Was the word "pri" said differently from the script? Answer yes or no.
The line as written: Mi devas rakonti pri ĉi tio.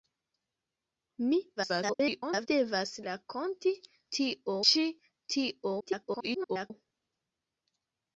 yes